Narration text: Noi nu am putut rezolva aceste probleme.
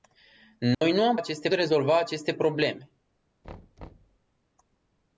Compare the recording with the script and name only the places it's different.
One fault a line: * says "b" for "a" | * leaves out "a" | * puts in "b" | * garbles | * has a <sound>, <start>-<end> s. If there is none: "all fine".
* has a dropout, 0.7-0.8 s
* says "aceste" for "putut"
* has a thud, 3.4-4.2 s